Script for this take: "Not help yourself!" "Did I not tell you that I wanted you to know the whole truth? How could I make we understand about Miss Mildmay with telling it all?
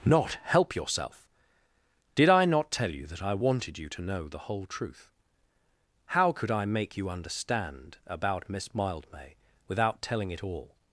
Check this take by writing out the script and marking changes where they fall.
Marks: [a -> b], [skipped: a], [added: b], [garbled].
"Not help yourself!" "Did I not tell you that I wanted you to know the whole truth? How could I make [we -> you] understand about Miss Mildmay [with -> without] telling it all?